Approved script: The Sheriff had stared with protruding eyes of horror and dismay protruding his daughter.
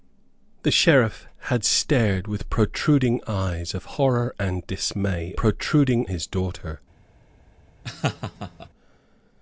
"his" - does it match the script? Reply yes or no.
yes